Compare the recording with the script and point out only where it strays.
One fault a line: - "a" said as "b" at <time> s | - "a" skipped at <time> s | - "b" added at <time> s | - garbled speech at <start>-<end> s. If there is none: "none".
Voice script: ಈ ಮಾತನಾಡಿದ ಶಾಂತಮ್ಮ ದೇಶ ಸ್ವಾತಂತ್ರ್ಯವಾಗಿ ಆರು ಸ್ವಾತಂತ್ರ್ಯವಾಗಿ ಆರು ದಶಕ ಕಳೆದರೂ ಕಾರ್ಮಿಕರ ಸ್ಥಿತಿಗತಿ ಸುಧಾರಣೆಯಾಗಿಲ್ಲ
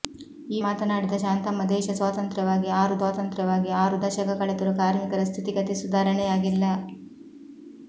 none